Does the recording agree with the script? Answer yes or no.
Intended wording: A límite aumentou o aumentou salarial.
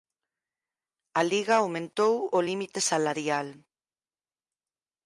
no